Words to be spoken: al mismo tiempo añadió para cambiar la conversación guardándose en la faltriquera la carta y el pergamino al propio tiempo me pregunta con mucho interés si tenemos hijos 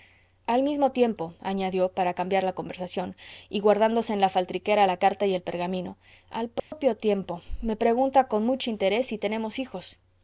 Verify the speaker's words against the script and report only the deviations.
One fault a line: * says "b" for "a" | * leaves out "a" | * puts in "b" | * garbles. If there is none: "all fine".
* puts in "y"